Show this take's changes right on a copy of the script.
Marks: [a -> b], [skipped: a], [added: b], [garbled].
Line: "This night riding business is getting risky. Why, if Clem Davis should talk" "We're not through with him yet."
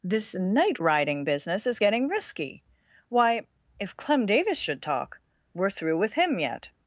"This night riding business is getting risky. Why, if Clem Davis should talk" "We're [skipped: not] through with him yet."